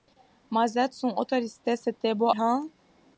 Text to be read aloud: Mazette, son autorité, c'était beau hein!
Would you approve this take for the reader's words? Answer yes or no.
yes